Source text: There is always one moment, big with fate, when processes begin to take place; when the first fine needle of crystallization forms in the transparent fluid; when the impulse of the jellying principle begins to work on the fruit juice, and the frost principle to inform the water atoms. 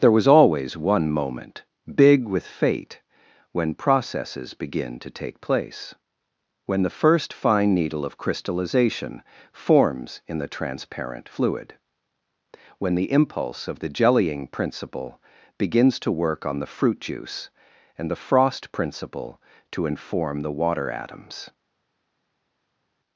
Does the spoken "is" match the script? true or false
false